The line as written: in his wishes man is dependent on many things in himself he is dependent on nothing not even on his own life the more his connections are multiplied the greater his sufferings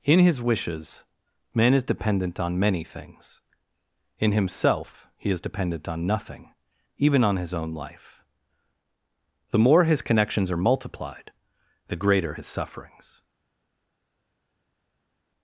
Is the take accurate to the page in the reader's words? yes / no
no